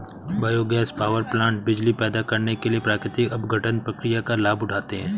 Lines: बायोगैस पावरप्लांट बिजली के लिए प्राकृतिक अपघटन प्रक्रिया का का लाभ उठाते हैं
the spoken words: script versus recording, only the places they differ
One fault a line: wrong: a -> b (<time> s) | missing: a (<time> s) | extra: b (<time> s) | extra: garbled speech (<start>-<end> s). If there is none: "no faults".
extra: पैदा करने (2.0 s)
missing: का (4.4 s)